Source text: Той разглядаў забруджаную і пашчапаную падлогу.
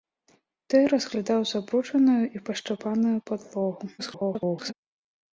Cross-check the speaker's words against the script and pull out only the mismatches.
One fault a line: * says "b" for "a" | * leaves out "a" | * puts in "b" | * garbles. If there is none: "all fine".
* garbles